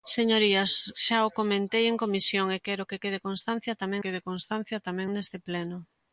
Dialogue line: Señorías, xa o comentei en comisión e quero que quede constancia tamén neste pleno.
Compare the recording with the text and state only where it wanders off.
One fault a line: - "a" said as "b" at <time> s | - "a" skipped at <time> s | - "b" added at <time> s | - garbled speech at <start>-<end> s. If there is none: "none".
- "quede constancia tamén" added at 4.0 s